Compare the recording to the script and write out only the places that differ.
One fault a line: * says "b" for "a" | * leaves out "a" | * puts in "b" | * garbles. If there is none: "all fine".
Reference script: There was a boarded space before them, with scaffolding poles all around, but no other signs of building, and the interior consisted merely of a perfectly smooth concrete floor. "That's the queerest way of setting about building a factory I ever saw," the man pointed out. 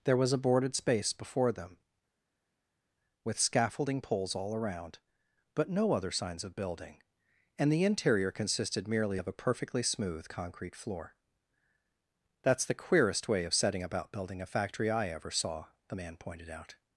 all fine